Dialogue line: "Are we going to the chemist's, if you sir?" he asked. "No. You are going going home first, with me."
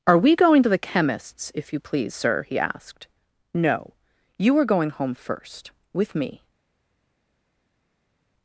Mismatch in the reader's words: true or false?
true